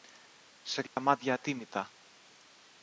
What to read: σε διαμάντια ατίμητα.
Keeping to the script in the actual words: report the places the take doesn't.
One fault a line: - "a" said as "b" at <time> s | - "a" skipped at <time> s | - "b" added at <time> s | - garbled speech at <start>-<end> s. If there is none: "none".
none